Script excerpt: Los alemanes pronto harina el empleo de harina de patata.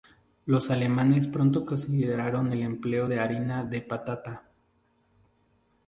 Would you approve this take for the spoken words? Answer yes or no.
no